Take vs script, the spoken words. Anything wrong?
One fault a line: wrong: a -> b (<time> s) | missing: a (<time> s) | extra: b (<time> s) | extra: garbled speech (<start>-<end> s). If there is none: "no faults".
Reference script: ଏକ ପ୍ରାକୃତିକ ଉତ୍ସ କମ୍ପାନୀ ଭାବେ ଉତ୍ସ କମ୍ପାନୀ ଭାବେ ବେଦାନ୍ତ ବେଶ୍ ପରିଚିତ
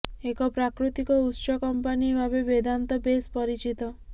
missing: ଉତ୍ସ କମ୍ପାନୀ ଭାବେ (2.4 s)